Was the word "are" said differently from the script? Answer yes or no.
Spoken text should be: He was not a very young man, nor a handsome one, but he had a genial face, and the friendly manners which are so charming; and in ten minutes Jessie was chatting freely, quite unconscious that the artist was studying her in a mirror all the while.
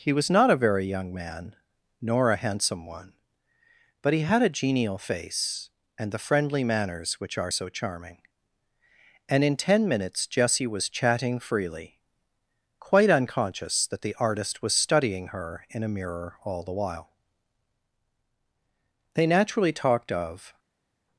no